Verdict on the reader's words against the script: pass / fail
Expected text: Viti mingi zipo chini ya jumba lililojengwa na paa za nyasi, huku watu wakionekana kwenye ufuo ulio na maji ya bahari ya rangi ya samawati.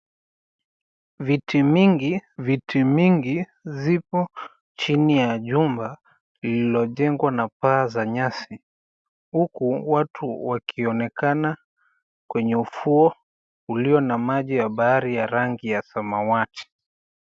fail